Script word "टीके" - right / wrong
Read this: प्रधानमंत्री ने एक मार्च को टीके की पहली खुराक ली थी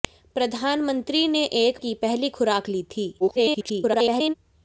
wrong